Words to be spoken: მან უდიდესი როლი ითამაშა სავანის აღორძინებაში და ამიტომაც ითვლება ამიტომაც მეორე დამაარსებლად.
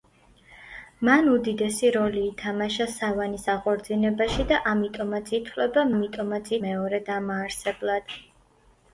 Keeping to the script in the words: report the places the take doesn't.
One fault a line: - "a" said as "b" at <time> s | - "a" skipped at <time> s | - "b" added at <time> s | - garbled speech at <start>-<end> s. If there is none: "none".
none